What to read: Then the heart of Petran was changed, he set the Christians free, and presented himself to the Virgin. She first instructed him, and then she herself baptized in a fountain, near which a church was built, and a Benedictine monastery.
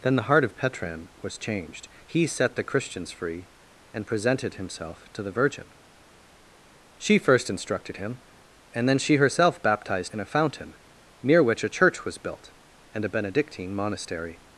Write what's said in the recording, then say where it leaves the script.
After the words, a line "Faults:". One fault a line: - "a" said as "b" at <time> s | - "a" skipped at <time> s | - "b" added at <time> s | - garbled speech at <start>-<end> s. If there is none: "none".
Then the heart of Petran was changed, he set the Christians free, and presented himself to the Virgin. She first instructed him, and then she herself baptized in a fountain, near which a church was built, and a Benedictine monastery.
Faults:
none